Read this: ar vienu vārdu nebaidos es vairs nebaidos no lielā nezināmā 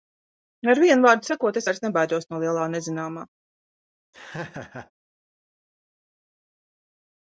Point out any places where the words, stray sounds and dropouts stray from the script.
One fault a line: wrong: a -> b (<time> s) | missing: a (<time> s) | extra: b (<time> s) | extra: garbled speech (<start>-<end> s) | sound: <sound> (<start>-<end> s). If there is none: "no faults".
wrong: nebaidos -> sakot (1.3 s)
sound: laugh (4.1-4.9 s)